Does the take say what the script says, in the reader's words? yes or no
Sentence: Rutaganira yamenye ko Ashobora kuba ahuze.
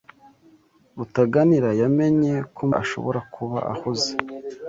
yes